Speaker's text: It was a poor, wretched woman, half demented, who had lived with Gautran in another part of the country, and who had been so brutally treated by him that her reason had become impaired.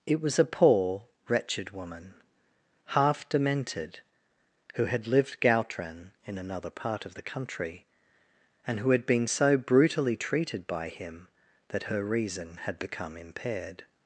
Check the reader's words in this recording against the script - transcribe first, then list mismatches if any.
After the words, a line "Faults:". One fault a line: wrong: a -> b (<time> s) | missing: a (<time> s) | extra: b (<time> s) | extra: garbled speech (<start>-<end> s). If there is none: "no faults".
It was a poor, wretched woman, half demented, who had lived Gautran in another part of the country, and who had been so brutally treated by him that her reason had become impaired.
Faults:
missing: with (5.4 s)